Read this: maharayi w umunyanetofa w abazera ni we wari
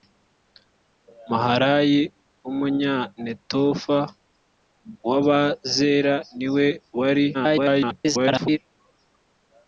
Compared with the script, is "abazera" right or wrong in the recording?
right